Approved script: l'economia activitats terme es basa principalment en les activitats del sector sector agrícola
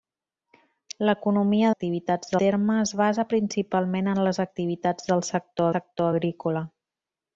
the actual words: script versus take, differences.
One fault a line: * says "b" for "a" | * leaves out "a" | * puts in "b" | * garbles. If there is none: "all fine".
all fine